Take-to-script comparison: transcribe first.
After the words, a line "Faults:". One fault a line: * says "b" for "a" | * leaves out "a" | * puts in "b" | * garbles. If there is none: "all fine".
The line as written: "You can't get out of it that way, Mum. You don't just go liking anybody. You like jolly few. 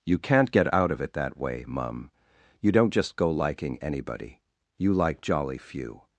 "You can't get out of it that way, Mum. You don't just go liking anybody. You like jolly few.
Faults:
all fine